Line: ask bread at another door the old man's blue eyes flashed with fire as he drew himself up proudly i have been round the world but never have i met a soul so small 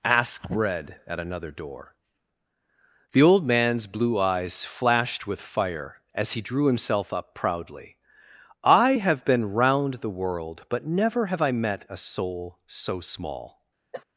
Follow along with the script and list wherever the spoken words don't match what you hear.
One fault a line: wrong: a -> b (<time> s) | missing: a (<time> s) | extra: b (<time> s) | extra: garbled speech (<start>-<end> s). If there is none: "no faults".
no faults